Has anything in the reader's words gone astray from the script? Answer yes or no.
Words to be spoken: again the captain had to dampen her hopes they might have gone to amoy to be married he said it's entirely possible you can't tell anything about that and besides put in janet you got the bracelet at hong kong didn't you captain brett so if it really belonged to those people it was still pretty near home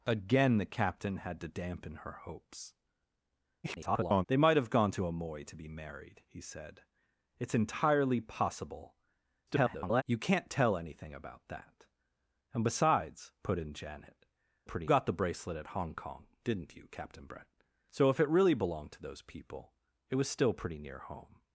yes